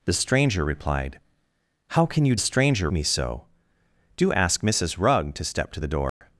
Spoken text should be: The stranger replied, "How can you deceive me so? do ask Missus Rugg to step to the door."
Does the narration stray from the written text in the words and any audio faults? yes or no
yes